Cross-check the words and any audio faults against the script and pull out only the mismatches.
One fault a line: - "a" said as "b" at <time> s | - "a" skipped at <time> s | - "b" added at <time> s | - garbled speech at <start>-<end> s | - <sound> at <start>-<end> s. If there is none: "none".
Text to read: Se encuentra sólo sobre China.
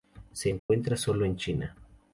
- dropout at 0.6-0.7 s
- "sobre" said as "en" at 1.3 s